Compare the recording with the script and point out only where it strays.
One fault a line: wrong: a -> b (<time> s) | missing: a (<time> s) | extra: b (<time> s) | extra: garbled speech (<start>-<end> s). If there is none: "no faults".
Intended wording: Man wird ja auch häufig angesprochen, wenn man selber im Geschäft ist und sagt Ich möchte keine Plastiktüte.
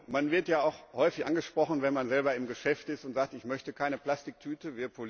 no faults